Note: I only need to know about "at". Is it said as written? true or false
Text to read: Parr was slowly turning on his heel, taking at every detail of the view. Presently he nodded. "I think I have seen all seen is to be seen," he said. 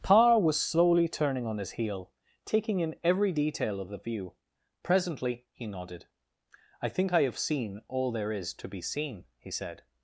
false